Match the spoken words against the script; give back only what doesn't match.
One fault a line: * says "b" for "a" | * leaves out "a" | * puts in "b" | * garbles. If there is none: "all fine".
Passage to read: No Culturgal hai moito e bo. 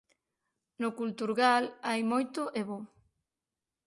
all fine